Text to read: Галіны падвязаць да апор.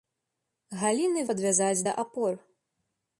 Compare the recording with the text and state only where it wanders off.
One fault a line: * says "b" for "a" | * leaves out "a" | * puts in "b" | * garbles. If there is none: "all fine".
all fine